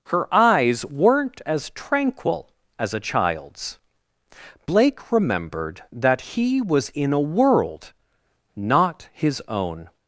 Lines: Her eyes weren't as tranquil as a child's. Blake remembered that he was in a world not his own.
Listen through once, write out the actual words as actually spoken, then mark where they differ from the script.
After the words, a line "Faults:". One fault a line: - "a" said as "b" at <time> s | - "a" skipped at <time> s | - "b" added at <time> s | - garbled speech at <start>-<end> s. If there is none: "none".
Her eyes weren't as tranquil as a child's. Blake remembered that he was in a world not his own.
Faults:
none